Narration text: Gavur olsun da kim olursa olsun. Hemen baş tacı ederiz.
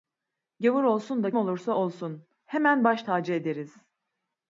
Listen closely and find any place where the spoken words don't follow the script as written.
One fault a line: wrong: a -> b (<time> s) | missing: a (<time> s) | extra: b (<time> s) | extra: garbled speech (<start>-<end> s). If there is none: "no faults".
missing: kim (1.3 s)